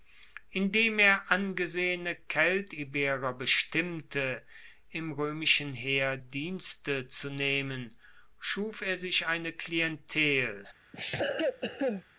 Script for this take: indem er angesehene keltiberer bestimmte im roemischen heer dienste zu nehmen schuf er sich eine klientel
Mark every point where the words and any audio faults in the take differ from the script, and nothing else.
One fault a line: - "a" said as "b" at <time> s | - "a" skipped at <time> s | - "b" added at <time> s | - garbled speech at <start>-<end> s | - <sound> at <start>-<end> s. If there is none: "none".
- cough at 10.9-12.0 s